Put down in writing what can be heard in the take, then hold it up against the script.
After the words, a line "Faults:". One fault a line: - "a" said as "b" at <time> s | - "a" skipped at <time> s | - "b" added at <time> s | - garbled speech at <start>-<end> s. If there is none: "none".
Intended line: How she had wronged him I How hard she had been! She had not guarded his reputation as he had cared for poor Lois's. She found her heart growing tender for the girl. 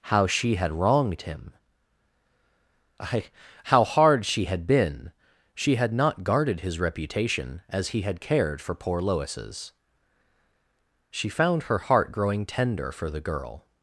How she had wronged him I How hard she had been! She had not guarded his reputation as he had cared for poor Lois's. She found her heart growing tender for the girl.
Faults:
none